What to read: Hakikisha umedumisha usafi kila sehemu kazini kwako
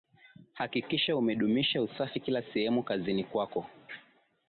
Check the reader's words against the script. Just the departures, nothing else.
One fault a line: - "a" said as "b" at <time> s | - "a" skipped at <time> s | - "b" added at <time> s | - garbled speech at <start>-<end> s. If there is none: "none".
none